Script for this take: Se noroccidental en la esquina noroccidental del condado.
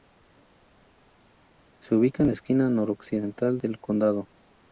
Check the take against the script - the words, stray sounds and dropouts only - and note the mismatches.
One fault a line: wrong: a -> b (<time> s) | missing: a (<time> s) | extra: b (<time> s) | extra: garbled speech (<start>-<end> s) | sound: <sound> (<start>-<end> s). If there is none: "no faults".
wrong: noroccidental -> ubica (2.0 s)